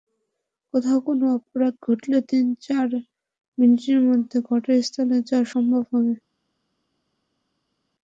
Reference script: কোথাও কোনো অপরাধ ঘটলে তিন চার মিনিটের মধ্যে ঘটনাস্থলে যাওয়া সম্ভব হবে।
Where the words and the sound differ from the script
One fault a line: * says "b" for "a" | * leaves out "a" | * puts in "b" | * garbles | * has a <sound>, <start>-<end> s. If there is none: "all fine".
all fine